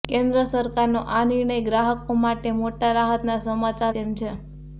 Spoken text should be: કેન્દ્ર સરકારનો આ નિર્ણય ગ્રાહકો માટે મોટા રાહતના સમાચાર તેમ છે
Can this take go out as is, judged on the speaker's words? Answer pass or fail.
pass